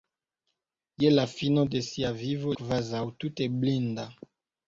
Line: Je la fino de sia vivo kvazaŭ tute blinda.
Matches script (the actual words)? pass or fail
pass